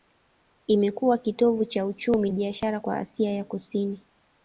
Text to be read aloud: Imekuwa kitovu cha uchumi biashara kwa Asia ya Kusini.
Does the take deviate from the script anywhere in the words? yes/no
no